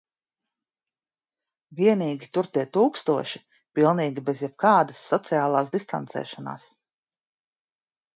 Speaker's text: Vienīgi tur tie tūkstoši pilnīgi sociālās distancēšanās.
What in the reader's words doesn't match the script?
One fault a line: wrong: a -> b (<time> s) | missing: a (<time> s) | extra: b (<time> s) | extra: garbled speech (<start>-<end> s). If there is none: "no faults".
extra: bez jebkādas (4.3 s)